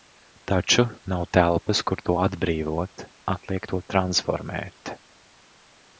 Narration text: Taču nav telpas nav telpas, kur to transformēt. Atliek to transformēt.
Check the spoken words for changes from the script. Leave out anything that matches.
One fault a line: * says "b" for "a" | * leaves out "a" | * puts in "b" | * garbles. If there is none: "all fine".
* leaves out "nav telpas"
* says "atbrīvot" for "transformēt"